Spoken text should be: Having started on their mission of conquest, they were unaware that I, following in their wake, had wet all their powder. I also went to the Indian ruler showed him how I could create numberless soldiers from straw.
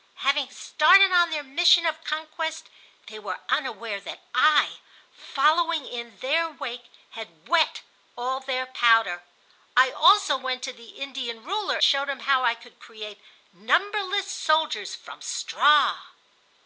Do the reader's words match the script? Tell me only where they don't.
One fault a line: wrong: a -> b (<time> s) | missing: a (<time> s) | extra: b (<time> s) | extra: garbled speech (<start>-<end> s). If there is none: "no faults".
no faults